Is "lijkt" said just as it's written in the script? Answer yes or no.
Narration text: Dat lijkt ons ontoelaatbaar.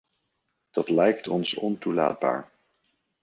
yes